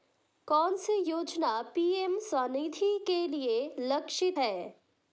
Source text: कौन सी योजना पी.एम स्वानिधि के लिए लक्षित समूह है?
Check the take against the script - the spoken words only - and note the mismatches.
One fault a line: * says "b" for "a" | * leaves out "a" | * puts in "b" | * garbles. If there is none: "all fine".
* leaves out "समूह"